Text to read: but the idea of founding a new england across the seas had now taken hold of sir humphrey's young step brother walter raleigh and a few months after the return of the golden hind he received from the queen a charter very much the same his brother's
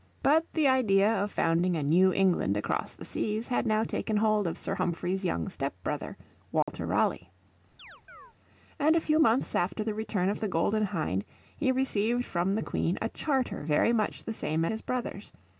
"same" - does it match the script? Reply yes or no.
yes